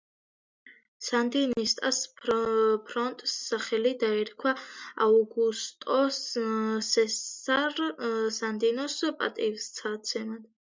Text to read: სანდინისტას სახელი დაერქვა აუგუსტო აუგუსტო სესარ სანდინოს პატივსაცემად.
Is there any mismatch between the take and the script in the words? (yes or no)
yes